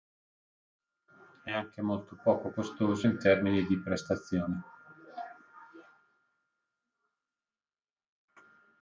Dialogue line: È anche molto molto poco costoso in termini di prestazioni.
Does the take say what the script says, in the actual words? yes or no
no